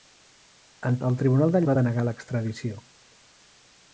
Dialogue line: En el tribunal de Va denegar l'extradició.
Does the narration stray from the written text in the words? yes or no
no